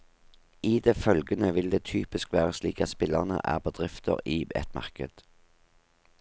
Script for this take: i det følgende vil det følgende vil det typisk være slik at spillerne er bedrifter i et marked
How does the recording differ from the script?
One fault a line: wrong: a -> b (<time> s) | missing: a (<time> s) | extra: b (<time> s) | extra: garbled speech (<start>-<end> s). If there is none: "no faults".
missing: følgende vil det (1.8 s)